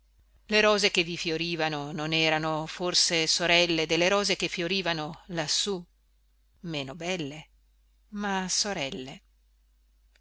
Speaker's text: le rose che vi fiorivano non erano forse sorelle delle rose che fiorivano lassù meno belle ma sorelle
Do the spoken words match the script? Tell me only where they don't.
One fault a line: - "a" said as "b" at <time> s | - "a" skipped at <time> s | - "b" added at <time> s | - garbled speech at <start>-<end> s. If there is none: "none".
none